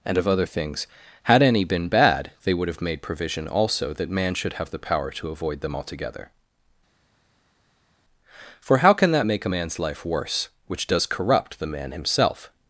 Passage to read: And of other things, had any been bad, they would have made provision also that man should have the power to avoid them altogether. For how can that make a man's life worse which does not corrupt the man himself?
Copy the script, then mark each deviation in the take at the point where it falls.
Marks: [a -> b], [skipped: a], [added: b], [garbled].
And of other things, had any been bad, they would have made provision also that man should have the power to avoid them altogether. For how can that make a man's life worse which does [skipped: not] corrupt the man himself?